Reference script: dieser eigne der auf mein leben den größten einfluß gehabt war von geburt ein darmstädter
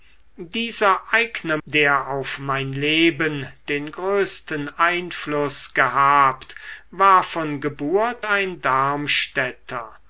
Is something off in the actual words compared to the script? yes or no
no